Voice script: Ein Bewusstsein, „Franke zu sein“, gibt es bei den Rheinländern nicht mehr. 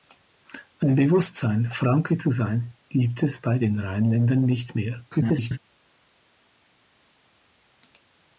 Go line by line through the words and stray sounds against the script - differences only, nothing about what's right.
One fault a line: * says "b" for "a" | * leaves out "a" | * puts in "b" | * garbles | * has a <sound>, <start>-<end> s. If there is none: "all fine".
* garbles